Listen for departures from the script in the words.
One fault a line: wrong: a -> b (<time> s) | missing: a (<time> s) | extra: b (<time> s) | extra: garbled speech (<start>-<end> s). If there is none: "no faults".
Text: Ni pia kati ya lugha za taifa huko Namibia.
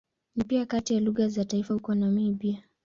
no faults